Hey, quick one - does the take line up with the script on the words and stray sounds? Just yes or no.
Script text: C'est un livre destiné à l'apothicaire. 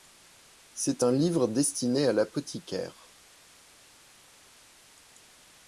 yes